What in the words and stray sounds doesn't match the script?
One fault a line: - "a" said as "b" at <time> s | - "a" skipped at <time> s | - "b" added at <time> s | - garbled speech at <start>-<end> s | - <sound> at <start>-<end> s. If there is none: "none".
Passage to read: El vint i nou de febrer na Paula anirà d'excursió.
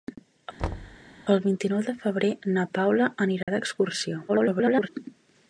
- thud at 0.6-1.0 s
- dropout at 3.4-3.5 s
- garbled speech at 4.3-4.9 s